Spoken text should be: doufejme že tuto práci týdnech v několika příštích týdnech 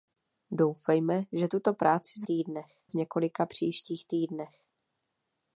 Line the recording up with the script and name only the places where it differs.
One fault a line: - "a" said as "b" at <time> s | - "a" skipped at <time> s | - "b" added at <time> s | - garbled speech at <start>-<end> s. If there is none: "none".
none